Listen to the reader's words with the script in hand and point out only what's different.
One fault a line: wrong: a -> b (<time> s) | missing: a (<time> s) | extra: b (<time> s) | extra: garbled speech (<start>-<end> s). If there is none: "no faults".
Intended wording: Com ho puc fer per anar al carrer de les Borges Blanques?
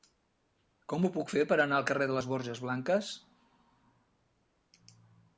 no faults